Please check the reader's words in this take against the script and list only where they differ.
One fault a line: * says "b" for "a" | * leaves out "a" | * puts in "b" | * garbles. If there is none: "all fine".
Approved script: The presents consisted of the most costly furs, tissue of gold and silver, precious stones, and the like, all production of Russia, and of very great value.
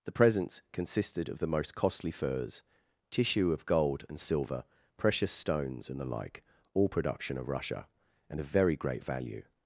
all fine